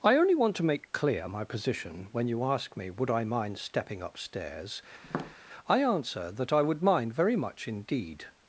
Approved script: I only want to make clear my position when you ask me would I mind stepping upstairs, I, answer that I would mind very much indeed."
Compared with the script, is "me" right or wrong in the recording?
right